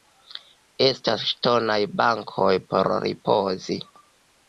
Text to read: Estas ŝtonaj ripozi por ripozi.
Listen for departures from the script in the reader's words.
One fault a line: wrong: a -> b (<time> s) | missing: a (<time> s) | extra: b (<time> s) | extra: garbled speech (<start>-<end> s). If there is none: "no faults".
wrong: ripozi -> bankoj (2.0 s)